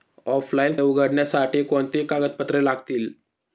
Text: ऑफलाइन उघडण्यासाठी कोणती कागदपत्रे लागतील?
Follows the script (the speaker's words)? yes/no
yes